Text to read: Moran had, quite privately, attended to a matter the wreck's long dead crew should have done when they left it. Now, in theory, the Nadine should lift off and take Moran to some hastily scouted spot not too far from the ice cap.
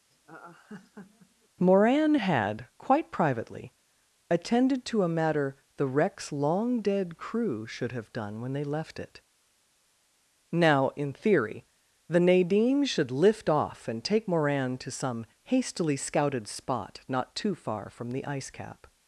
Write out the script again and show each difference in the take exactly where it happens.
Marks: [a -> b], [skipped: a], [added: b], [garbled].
Moran had, quite privately, attended to a matter the wreck's long dead crew should have done when they left it. Now, in theory, the Nadine should lift off and take Moran to some hastily scouted spot not too far from the ice cap.